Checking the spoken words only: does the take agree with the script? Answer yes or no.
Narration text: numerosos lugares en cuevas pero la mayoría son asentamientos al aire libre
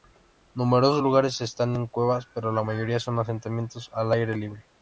no